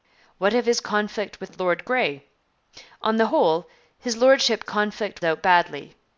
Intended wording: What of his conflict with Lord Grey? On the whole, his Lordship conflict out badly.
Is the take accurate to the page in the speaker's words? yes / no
yes